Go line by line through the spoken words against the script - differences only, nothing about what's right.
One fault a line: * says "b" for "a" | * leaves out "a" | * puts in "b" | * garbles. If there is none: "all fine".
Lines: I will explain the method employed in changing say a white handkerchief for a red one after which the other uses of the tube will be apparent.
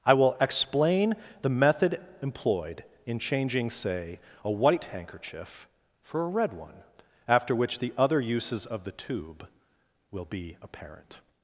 all fine